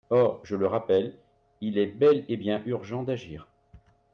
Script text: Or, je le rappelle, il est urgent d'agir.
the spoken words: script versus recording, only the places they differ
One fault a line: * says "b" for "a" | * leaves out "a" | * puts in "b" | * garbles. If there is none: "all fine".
* puts in "bel et bien"